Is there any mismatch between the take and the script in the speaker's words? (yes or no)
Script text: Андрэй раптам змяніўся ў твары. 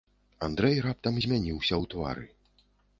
no